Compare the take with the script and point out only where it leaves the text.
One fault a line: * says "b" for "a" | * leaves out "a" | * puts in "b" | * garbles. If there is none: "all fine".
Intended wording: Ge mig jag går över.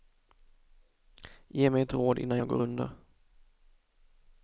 * puts in "ett råd innan"
* says "under" for "över"